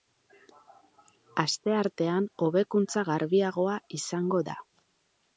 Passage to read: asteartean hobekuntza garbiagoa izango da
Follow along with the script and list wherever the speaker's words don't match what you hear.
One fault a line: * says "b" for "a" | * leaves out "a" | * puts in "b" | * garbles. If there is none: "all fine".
all fine